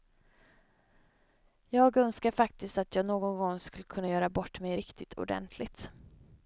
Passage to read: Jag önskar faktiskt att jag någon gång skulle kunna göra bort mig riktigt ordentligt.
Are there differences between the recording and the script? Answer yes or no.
no